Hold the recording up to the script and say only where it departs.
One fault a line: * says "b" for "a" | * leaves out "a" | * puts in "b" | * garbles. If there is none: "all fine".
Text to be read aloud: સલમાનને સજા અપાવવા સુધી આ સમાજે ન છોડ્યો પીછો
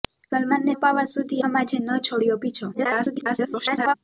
* leaves out "સજા"
* leaves out "આ"
* garbles